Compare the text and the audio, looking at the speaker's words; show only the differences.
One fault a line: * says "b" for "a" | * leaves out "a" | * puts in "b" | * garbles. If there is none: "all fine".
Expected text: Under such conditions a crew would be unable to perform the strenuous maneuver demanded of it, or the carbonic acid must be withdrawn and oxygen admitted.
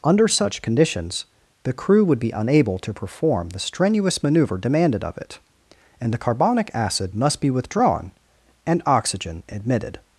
* says "the" for "a"
* says "and" for "or"